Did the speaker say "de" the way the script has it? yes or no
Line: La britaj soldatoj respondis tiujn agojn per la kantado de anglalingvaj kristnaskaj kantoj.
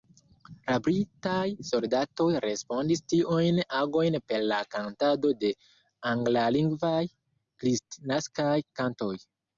yes